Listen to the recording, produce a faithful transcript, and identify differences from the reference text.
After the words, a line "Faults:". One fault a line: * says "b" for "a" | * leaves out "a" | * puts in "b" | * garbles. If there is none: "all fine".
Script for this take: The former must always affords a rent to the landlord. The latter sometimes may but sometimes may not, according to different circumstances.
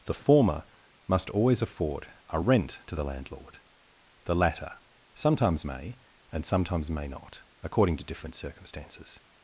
The former must always afford a rent to the landlord. The latter sometimes may and sometimes may not, according to different circumstances.
Faults:
* says "afford" for "affords"
* says "and" for "but"